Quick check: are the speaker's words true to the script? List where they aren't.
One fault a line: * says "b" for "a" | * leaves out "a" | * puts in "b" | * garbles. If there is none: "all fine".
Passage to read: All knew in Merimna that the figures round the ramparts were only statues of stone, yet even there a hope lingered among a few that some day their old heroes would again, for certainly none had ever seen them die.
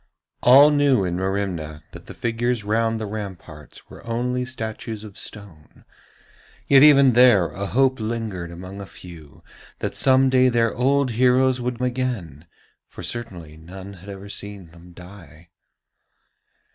all fine